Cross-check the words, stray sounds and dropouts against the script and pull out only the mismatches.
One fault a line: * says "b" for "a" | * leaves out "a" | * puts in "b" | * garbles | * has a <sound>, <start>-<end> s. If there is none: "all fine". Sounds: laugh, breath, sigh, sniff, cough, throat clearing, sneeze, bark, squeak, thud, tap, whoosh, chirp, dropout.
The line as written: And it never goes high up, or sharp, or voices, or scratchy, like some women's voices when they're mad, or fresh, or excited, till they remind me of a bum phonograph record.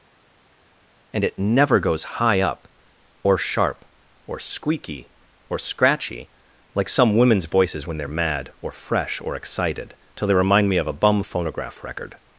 * says "squeaky" for "voices"